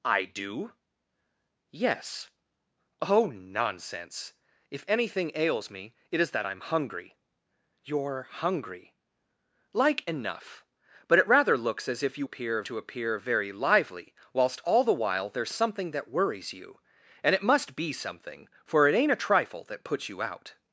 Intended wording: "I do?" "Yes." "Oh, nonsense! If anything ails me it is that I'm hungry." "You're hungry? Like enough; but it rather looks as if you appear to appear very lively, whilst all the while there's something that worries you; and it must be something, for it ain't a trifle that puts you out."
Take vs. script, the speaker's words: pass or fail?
pass